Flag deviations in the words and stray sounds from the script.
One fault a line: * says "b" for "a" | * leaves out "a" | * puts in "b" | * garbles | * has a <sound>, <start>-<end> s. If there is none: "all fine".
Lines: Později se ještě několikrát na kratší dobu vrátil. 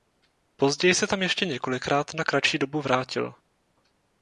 * puts in "tam"